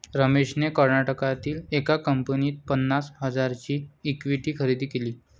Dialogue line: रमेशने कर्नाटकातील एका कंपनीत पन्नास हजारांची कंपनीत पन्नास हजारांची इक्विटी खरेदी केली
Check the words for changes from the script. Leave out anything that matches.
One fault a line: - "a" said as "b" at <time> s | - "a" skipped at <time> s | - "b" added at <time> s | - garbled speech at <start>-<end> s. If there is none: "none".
- "कंपनीत पन्नास हजारांची" skipped at 3.8 s